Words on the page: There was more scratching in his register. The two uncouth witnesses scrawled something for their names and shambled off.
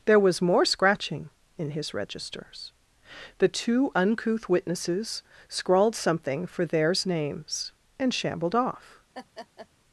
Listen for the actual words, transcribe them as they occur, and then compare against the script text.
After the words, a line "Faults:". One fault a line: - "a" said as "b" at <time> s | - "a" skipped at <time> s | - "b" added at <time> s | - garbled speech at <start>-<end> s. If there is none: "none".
There was more scratching in his registers. The two uncouth witnesses scrawled something for theirs names and shambled off.
Faults:
- "register" said as "registers" at 1.9 s
- "their" said as "theirs" at 6.7 s